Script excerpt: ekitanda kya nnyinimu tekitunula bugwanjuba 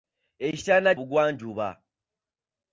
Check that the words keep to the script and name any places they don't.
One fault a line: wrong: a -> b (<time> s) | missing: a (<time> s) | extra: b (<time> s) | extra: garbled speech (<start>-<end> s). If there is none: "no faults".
missing: kya nnyinimu tekitunula (0.9 s)